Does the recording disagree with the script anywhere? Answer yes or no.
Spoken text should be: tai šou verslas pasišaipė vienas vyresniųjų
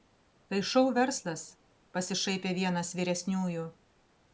no